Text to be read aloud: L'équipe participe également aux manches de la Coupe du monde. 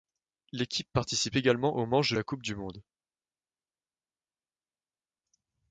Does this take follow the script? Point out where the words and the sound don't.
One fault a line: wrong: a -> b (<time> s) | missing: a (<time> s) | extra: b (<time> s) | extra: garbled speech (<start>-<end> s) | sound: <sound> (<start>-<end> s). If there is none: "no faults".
no faults